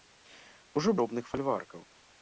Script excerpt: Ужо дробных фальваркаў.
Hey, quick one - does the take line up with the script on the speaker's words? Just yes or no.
yes